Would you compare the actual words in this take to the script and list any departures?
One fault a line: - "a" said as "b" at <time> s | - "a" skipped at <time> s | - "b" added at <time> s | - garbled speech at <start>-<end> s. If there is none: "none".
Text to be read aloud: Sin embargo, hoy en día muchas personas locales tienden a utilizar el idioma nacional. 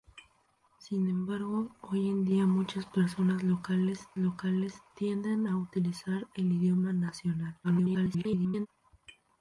- "locales" added at 4.2 s
- garbled speech at 7.6-8.7 s